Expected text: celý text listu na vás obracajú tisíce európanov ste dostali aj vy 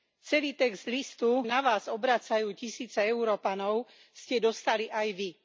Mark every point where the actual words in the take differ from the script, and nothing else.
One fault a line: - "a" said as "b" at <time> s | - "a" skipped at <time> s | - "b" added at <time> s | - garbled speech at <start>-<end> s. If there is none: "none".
none